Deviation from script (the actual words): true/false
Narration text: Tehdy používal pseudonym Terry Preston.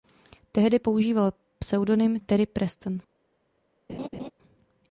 false